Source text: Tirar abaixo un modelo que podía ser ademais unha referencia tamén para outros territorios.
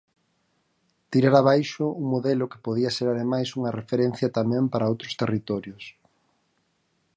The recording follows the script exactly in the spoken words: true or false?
true